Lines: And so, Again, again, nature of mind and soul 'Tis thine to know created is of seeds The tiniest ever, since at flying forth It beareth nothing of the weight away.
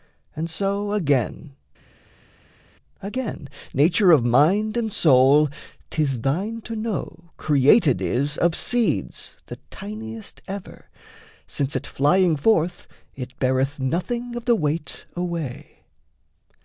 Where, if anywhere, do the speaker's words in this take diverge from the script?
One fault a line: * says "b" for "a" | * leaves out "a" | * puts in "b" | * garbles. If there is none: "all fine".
all fine